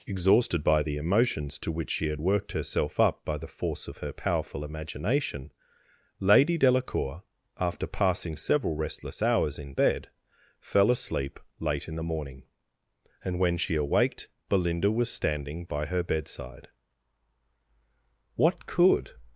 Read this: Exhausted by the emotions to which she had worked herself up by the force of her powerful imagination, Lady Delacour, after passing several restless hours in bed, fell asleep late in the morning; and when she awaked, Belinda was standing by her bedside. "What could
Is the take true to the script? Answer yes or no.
yes